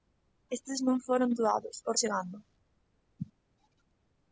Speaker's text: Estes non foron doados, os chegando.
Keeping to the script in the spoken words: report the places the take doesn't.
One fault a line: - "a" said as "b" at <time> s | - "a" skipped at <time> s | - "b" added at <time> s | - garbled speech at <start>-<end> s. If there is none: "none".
none